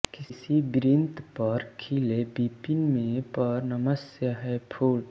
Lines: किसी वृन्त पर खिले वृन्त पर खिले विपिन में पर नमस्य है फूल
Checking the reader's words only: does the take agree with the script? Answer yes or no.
no